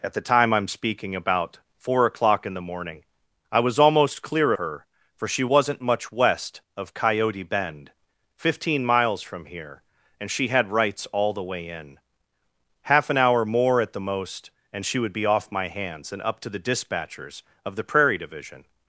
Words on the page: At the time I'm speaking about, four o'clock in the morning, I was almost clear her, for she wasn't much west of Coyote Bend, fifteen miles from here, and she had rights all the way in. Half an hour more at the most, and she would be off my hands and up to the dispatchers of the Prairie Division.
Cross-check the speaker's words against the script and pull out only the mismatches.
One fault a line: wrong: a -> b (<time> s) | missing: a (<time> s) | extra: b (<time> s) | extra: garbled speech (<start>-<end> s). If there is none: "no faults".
no faults